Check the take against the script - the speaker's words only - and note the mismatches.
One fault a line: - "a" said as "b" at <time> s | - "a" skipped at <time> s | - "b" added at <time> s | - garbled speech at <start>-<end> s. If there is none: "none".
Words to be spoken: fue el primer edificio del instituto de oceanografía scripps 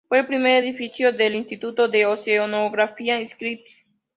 none